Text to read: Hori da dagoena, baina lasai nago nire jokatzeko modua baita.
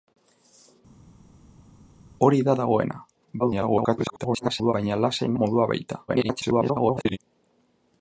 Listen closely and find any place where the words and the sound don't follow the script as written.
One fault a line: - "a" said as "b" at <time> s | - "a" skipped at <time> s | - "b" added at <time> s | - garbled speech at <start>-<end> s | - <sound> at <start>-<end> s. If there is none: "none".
- garbled speech at 3.4-4.7 s
- "nago nire jokatzeko" skipped at 5.3 s
- garbled speech at 6.1-7.2 s